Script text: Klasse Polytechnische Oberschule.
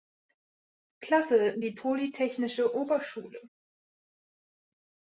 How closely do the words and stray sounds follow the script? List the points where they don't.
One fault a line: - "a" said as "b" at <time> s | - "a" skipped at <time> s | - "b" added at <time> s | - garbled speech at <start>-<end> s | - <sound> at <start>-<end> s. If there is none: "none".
- "die" added at 1.6 s